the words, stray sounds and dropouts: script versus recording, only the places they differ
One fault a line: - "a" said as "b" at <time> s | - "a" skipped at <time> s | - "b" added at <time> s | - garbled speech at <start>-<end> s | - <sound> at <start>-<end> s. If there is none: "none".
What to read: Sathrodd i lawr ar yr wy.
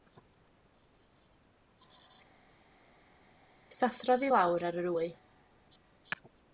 none